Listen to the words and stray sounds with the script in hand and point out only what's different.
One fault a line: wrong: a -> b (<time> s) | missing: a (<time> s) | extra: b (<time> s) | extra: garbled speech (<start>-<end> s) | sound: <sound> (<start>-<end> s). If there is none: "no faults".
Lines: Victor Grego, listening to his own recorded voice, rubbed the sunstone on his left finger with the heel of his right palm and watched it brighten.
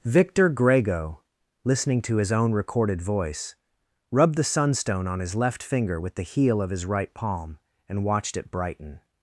no faults